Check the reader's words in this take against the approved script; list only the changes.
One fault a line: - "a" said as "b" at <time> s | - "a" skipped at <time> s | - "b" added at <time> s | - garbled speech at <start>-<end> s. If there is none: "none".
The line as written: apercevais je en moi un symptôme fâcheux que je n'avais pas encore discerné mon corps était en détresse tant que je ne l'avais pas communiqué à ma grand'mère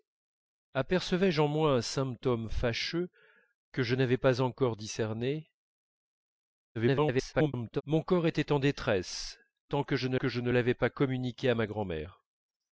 - garbled speech at 6.7-7.8 s
- "que je ne" added at 10.1 s